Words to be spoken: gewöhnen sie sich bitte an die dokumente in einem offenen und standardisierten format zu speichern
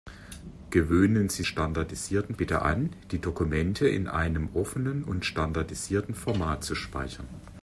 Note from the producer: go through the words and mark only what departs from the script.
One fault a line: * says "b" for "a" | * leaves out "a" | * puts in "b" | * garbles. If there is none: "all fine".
* says "standardisierten" for "sich"